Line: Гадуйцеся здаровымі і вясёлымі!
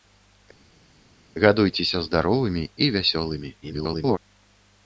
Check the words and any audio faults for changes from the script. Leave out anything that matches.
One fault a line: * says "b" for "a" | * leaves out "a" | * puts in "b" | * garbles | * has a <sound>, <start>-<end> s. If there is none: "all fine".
* garbles